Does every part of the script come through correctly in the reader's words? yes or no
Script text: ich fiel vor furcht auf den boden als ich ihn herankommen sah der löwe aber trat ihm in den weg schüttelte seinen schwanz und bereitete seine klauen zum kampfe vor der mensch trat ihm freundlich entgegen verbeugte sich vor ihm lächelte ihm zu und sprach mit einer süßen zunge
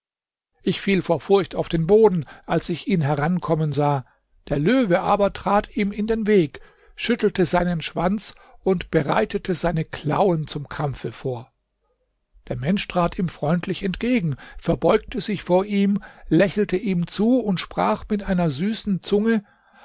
yes